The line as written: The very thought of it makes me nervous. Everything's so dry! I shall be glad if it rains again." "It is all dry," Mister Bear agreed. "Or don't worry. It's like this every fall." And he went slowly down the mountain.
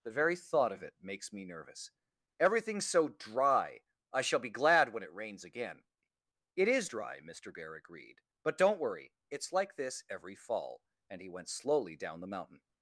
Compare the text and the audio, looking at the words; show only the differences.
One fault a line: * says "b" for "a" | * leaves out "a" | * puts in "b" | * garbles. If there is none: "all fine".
* says "when" for "if"
* leaves out "all"
* says "But" for "Or"